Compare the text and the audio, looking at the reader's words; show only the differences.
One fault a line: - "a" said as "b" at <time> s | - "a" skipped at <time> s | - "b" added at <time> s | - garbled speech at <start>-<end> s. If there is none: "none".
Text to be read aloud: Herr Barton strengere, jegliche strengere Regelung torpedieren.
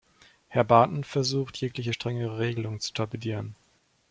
- "strengere" said as "versucht" at 1.0 s
- "zu" added at 2.8 s